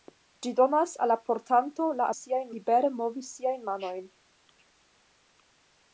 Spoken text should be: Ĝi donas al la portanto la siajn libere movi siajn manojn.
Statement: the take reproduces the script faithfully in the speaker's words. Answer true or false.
true